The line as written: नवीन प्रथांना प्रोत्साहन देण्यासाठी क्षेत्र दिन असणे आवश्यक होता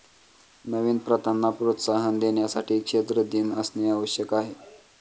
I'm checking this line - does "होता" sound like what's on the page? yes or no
no